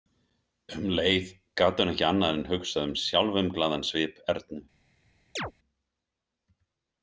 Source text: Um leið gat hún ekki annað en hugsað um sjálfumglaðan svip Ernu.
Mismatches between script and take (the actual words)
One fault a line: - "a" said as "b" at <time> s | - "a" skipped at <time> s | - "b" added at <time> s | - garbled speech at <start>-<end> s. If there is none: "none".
none